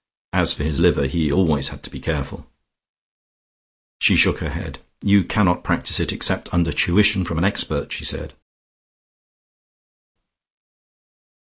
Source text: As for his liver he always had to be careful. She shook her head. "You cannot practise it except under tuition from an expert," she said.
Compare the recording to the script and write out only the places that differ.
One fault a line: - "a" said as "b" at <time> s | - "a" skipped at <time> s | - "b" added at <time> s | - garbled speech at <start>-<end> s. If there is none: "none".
none